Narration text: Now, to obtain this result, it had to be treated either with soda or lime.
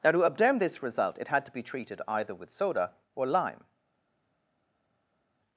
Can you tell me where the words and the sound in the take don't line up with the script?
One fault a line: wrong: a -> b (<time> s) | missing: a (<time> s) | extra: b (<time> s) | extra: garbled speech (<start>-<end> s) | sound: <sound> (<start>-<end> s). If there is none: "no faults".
no faults